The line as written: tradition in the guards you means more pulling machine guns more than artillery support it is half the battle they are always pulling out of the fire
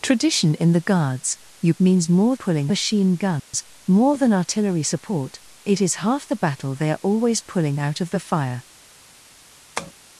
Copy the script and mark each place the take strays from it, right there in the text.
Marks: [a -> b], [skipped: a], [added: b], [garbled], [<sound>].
tradition in the guards you means more pulling machine guns [dropout] more than artillery support it is half the battle they are always pulling out of the fire [tap]